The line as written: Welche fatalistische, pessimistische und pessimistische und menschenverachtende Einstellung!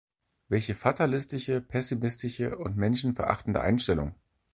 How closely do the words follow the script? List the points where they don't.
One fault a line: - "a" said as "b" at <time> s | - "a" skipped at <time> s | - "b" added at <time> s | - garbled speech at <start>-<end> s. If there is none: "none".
- "pessimistische und" skipped at 2.8 s